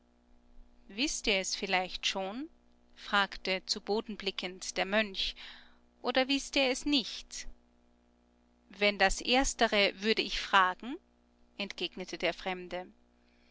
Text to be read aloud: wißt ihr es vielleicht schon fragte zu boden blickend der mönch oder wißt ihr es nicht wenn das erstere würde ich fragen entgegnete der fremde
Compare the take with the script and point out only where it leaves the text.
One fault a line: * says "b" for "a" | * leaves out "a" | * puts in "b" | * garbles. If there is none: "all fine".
all fine